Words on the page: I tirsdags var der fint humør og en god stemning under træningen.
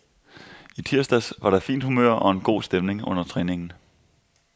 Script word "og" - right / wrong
right